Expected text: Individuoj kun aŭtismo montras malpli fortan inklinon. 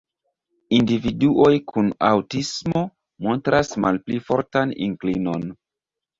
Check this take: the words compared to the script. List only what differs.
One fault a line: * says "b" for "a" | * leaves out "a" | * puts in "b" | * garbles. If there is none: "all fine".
all fine